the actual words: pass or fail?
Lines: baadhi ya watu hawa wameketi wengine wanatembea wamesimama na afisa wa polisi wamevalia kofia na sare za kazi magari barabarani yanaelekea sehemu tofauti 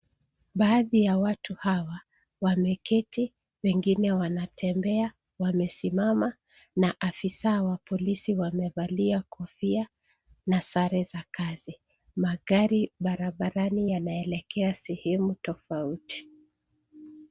pass